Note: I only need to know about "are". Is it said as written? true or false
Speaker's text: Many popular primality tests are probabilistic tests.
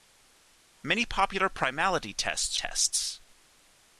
false